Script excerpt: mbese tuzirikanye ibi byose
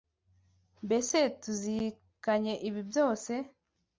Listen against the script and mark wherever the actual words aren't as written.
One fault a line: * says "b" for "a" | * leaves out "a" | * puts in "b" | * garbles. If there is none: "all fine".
all fine